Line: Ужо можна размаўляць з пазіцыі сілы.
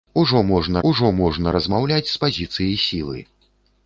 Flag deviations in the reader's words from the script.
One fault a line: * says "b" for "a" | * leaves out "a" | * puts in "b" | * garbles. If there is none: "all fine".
* puts in "ужо можна"